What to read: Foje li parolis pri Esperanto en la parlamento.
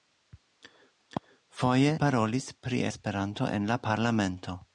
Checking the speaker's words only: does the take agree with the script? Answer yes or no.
no